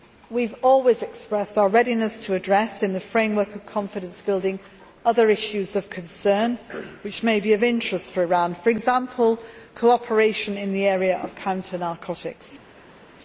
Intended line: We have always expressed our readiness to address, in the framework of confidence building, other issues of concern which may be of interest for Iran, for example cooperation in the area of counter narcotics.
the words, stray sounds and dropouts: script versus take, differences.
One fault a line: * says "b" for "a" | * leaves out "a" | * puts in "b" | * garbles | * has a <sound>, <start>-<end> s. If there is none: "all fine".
all fine